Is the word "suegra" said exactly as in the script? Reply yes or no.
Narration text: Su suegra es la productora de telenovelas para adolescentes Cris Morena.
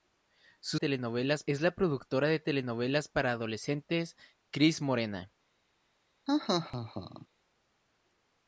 no